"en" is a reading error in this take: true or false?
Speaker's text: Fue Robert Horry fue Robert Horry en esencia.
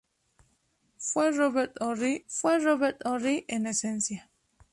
false